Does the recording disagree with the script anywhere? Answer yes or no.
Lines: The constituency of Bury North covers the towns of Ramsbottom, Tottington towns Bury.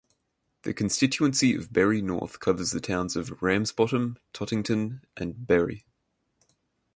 yes